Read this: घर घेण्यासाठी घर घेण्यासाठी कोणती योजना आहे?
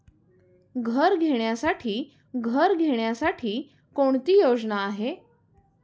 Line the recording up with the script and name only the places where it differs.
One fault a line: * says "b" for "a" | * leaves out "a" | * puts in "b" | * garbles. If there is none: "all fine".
all fine